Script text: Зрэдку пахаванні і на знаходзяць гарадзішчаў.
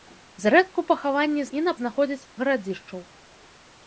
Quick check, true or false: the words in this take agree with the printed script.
true